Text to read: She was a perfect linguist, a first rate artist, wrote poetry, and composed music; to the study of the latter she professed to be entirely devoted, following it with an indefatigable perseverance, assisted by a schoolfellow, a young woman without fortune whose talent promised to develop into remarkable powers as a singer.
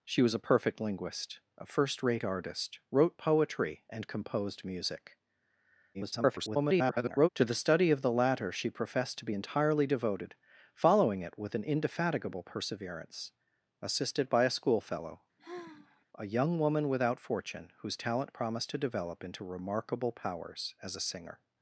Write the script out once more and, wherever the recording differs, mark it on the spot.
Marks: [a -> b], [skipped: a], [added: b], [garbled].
She was a perfect linguist, a first rate artist, wrote poetry, and composed music; [garbled] to the study of the latter she professed to be entirely devoted, following it with an indefatigable perseverance, assisted by a schoolfellow, a young woman without fortune whose talent promised to develop into remarkable powers as a singer.